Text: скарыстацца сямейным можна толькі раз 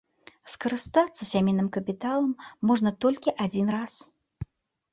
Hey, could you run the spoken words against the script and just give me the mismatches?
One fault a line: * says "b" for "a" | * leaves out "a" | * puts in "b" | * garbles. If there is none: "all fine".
* puts in "капіталам"
* puts in "адзін"